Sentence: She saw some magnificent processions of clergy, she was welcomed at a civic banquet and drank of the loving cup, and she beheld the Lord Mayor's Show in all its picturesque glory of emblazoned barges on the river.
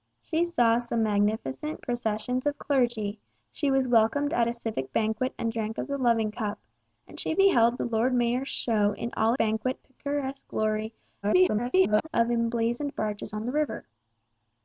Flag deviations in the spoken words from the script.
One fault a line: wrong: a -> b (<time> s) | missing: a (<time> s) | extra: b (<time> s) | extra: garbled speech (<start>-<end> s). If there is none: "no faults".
wrong: its -> banquet (9.4 s)
extra: garbled speech (11.2-12.1 s)